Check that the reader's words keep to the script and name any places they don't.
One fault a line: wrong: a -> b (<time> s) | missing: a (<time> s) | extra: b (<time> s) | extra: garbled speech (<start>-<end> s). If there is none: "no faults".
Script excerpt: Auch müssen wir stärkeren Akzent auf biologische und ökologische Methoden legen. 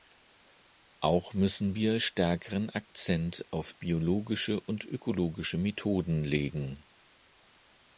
no faults